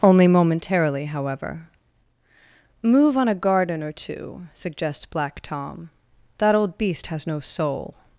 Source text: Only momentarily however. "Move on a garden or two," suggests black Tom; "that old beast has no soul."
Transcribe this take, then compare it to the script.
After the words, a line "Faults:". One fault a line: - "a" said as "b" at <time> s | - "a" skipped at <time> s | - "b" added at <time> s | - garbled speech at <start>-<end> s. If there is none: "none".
Only momentarily however. "Move on a garden or two," suggests black Tom; "that old beast has no soul."
Faults:
none